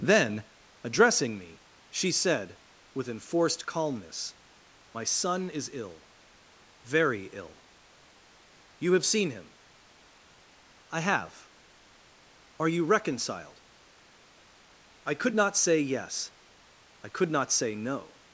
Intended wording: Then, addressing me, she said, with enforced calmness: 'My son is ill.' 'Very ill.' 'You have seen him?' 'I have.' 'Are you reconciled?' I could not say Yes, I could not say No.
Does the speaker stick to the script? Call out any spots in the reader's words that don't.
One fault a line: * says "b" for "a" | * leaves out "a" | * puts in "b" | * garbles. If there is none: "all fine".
all fine